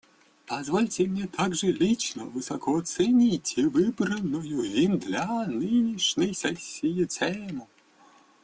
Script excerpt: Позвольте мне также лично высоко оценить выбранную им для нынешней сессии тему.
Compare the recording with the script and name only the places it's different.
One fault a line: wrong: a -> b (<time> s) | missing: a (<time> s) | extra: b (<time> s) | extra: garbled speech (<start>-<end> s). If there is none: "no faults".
no faults